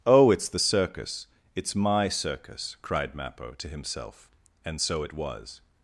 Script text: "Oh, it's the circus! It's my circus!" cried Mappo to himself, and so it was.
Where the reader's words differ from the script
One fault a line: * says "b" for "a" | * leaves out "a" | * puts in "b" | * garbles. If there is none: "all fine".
all fine